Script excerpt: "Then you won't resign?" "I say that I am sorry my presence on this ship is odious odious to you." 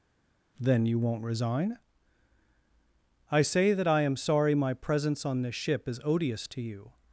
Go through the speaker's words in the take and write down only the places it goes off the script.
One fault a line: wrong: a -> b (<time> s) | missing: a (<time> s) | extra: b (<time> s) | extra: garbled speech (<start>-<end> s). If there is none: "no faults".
missing: odious (6.5 s)